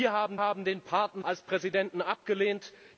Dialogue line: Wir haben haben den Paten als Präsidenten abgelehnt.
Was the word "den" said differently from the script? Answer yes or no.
no